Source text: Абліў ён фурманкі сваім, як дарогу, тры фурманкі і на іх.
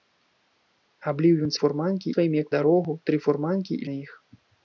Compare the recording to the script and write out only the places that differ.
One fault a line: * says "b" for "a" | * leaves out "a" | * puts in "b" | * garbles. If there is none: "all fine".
all fine